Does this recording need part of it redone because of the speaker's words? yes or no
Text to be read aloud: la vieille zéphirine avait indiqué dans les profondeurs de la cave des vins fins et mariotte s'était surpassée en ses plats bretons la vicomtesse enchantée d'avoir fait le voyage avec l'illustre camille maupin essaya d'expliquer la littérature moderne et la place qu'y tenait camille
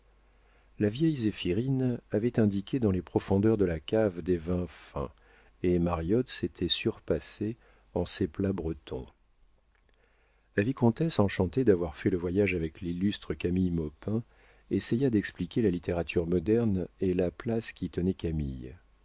no